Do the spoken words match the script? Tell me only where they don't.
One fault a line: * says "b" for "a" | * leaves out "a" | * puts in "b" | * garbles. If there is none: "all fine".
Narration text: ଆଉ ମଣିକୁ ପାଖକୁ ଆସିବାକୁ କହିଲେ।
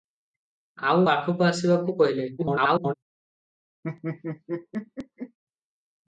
* leaves out "ମଣିକୁ"
* garbles